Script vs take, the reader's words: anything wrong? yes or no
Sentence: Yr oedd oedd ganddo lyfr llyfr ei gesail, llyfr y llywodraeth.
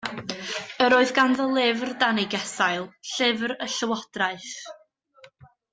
yes